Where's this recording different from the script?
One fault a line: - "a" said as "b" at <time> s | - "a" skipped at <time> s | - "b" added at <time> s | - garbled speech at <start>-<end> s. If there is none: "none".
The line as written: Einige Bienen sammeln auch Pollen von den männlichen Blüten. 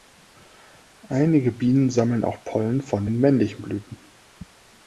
none